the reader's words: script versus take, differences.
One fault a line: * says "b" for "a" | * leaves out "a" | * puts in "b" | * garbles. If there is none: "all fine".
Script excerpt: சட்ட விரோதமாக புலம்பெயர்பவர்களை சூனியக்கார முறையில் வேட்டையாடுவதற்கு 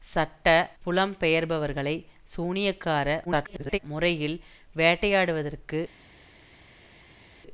* leaves out "விரோதமாக"
* garbles